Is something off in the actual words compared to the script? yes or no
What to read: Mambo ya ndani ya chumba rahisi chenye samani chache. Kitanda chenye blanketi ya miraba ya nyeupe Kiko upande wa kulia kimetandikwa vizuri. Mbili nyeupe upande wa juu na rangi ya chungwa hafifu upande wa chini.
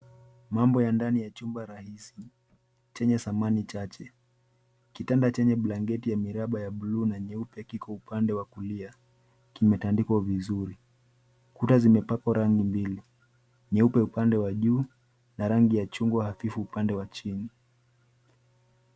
yes